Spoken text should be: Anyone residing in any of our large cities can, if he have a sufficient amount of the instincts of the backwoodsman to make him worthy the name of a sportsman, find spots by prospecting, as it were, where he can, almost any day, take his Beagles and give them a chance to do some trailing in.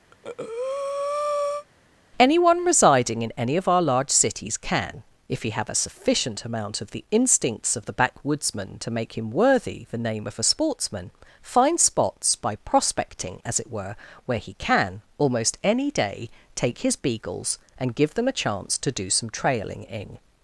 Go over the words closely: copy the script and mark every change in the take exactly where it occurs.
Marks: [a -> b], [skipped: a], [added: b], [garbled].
Anyone residing in any of our large cities can, if he have a sufficient amount of the instincts of the backwoodsman to make him worthy the name of a sportsman, find spots by prospecting, as it were, where he can, almost any day, take his Beagles and give them a chance to do some trailing in.